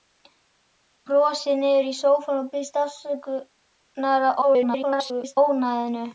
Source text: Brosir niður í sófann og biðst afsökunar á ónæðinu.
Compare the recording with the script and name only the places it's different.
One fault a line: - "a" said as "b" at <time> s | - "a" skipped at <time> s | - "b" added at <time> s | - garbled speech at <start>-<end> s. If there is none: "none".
- garbled speech at 4.4-5.4 s